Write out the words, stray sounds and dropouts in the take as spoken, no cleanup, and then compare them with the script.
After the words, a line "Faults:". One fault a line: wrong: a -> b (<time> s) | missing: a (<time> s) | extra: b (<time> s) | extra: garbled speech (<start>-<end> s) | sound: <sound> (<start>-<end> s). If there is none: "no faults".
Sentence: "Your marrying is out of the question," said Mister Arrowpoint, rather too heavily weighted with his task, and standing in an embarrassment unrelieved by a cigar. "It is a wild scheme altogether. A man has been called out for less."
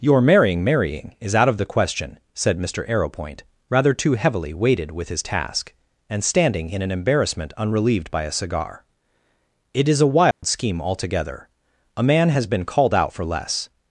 "Your marrying marrying is out of the question," said Mister Arrowpoint, rather too heavily weighted with his task, and standing in an embarrassment unrelieved by a cigar. "It is a wild scheme altogether. A man has been called out for less."
Faults:
extra: marrying (0.6 s)
sound: dropout (10.3-10.4 s)